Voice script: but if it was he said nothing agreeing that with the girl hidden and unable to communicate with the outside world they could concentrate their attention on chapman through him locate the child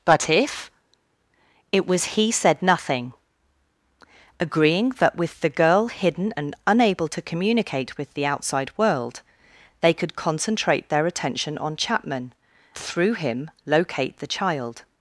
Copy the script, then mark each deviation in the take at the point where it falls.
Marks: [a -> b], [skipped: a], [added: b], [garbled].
but if it was he said nothing agreeing that with the girl hidden and unable to communicate with the outside world they could concentrate their attention on chapman through him locate the child